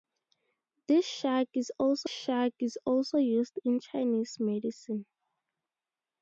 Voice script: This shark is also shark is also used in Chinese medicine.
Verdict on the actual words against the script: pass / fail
pass